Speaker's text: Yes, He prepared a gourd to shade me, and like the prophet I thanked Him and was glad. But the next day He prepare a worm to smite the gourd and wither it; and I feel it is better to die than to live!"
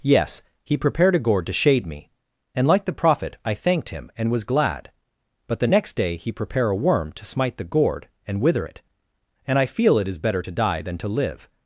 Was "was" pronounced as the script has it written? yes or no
yes